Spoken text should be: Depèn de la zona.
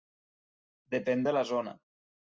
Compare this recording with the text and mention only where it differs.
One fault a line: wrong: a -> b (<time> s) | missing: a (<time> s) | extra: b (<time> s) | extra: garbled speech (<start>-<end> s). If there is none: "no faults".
no faults